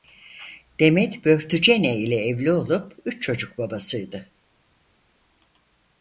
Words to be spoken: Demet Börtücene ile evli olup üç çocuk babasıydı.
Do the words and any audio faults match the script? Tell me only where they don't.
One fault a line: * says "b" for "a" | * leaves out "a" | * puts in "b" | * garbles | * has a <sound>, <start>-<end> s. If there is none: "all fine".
all fine